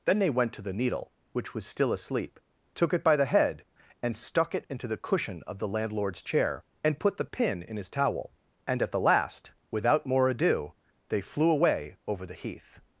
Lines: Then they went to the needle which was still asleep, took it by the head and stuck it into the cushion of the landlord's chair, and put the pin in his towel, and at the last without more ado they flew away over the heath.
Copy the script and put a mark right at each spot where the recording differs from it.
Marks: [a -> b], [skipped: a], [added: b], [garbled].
Then they went to the needle which was still asleep, took it by the head and stuck it into the cushion of the landlord's chair, and put the pin in his towel, and at the last without more ado they flew away over the heath.